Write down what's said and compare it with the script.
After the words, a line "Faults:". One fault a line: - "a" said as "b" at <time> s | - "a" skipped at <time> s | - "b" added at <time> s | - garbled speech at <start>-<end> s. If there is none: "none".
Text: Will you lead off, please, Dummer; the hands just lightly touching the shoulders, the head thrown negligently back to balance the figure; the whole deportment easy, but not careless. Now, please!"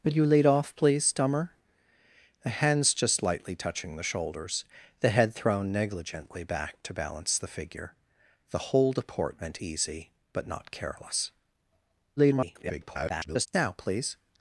Will you lead off, please, Dummer; the hands just lightly touching the shoulders, the head thrown negligently back to balance the figure; the whole deportment easy, but not careless. [garbled] Now, please!"
Faults:
- garbled speech at 12.2-13.5 s